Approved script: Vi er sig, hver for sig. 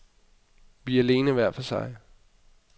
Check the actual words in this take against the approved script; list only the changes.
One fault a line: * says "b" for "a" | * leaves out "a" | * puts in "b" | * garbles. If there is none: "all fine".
* says "alene" for "sig"